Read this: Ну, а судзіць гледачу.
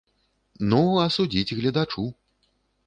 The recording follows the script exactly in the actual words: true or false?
true